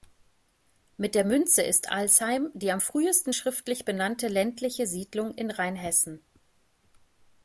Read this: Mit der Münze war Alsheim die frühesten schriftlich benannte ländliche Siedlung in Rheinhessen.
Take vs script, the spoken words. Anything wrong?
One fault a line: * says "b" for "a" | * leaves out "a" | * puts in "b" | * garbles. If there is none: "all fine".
* says "ist" for "war"
* puts in "am"